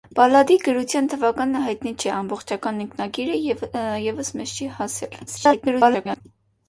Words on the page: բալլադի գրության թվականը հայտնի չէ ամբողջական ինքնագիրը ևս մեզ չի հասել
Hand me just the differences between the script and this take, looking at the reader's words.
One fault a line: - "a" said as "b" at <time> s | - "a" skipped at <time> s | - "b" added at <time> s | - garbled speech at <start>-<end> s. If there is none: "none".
- garbled speech at 5.3-6.2 s